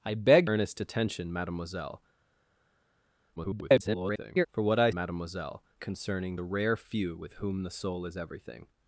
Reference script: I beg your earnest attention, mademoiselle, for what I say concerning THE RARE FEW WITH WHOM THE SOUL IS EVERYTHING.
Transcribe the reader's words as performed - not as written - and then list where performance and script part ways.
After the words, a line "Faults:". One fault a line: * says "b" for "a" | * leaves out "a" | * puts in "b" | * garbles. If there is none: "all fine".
I beg earnest attention, mademoiselle, [garbled] for what I mademoiselle concerning THE RARE FEW WITH WHOM THE SOUL IS EVERYTHING.
Faults:
* leaves out "your"
* garbles
* says "mademoiselle" for "say"